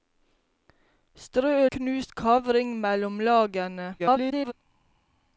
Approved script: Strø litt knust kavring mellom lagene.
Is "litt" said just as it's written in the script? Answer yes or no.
no